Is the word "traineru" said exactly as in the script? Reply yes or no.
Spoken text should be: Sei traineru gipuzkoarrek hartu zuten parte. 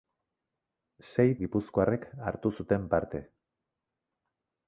no